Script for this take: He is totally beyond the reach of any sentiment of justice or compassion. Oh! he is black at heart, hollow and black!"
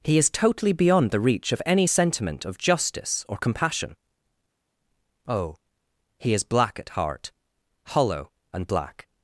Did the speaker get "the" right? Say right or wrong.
right